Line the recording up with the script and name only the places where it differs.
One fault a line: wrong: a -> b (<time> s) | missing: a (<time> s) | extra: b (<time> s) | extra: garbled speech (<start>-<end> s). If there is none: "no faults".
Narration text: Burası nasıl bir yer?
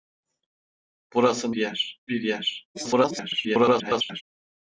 wrong: nasıl -> yer (1.5 s)
extra: garbled speech (2.7-4.2 s)